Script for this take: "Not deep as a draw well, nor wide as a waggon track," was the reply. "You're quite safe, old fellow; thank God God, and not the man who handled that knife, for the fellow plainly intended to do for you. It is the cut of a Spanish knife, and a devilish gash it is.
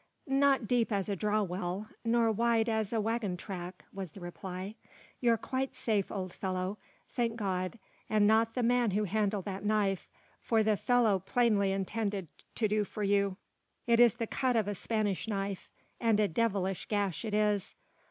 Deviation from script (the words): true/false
true